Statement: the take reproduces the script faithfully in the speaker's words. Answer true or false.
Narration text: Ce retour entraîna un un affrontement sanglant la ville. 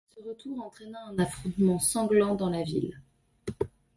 false